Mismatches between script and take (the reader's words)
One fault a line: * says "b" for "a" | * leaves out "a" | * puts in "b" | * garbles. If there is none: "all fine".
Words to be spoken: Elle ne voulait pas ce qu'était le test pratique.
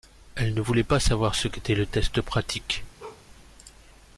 * puts in "savoir"